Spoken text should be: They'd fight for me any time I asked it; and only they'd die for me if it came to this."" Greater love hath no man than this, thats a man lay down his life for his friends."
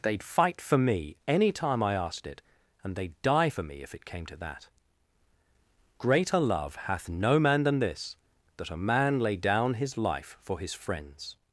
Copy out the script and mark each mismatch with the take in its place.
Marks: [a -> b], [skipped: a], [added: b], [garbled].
They'd fight for me any time I asked it; and [skipped: only] they'd die for me if it came to [this."" -> that] Greater love hath no man than this, [thats -> that] a man lay down his life for his friends."